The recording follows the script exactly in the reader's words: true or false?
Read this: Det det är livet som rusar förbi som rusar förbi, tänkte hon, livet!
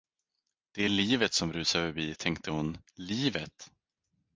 false